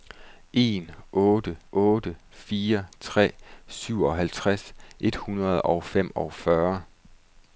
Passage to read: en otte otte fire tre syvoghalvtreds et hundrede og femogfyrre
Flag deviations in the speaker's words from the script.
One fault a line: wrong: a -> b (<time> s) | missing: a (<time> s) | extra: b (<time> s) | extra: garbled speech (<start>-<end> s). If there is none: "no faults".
no faults